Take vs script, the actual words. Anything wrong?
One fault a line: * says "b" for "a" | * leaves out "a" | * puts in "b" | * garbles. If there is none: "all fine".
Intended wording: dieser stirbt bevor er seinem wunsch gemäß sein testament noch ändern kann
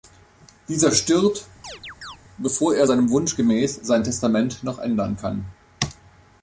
all fine